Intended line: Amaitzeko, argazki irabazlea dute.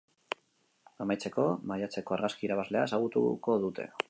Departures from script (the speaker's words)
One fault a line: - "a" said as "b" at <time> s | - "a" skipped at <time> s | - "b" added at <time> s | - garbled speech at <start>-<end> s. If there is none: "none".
- "maiatzeko" added at 1.7 s
- "ezagutuko" added at 2.9 s